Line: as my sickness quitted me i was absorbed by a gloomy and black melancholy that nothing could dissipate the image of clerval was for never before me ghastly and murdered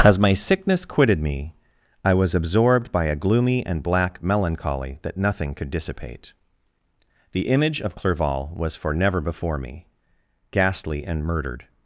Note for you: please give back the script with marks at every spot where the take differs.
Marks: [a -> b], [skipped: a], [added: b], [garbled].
as my sickness quitted me i was absorbed by a gloomy and black melancholy that nothing could dissipate the image of clerval was for never before me ghastly and murdered